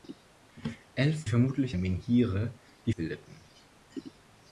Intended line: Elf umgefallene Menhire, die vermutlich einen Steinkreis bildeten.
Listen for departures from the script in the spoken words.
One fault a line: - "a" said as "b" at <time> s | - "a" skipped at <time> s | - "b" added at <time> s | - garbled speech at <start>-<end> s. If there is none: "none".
- "umgefallene" said as "vermutlich" at 1.3 s
- "vermutlich einen Steinkreis" skipped at 2.9 s